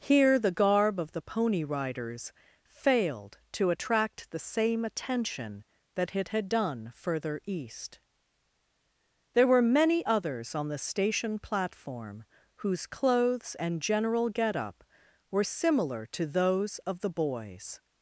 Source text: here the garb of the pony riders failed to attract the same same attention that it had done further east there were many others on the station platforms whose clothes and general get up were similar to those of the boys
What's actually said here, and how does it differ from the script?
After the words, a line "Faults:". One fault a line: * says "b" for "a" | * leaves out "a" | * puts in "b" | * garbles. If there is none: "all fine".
here the garb of the pony riders failed to attract the same attention that it had done further east there were many others on the station platform whose clothes and general get up were similar to those of the boys
Faults:
* leaves out "same"
* says "platform" for "platforms"